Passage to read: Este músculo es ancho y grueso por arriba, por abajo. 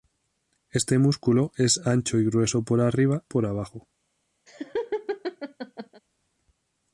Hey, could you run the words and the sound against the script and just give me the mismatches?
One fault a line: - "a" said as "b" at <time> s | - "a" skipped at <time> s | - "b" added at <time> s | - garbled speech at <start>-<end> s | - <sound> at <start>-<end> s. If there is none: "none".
- laugh at 4.5-6.0 s